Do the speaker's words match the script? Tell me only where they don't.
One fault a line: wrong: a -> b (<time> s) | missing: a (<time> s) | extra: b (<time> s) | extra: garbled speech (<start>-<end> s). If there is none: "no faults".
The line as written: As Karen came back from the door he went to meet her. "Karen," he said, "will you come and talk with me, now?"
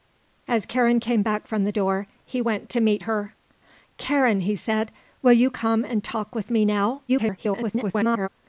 extra: garbled speech (7.1-8.3 s)